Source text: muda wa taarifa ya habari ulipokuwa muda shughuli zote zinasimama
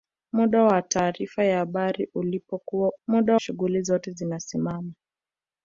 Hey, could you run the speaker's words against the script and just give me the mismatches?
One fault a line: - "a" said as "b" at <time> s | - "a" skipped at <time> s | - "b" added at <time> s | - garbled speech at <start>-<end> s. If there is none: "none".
none